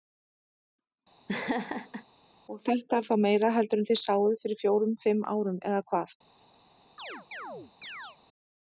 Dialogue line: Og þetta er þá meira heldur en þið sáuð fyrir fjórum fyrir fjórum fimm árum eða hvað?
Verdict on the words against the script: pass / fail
fail